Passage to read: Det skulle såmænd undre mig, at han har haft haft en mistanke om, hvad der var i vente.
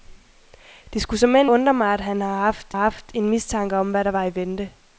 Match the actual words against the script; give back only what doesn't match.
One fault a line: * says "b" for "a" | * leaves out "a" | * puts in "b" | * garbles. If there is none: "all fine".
all fine